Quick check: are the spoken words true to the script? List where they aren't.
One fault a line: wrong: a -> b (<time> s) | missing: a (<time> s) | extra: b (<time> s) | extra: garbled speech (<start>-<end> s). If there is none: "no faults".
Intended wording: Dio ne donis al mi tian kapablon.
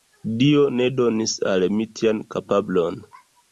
no faults